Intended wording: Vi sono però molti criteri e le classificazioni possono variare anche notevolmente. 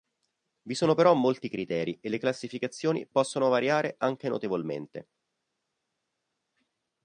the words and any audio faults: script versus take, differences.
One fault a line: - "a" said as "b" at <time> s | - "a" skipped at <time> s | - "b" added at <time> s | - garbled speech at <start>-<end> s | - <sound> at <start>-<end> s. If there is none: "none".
none